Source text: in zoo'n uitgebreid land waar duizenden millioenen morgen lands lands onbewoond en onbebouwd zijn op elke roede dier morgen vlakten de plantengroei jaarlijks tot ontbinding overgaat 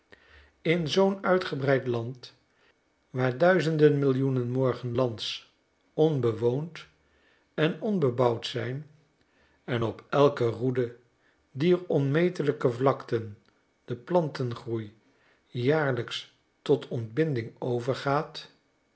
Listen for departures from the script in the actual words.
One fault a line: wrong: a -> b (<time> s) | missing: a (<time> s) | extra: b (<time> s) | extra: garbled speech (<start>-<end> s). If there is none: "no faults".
missing: lands (5.5 s)
extra: en (9.6 s)
wrong: morgen -> onmetelijke (11.9 s)